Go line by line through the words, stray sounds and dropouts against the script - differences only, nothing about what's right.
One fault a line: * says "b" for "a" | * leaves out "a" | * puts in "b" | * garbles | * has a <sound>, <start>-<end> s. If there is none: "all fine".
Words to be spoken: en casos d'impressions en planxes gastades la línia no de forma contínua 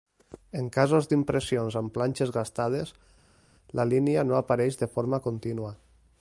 * says "amb" for "en"
* puts in "apareix"